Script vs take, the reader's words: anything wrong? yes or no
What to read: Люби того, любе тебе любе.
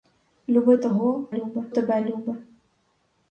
no